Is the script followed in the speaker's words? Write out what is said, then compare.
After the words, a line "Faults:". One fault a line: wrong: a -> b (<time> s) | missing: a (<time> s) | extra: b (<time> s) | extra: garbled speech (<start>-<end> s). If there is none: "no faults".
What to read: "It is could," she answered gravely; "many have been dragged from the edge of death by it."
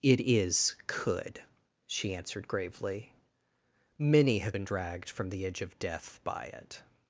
"It is could," she answered gravely; "many have been dragged from the edge of death by it."
Faults:
no faults